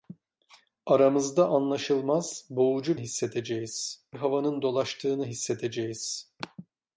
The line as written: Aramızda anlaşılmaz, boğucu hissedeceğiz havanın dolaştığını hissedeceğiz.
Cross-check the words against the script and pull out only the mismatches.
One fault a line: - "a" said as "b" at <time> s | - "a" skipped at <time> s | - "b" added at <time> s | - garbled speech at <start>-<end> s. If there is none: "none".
none